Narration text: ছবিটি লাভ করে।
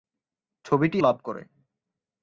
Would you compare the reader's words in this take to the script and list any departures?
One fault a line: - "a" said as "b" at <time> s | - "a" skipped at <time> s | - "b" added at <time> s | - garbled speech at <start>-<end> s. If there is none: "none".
none